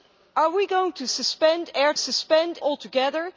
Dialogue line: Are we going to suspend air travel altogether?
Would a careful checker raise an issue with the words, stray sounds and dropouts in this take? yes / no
yes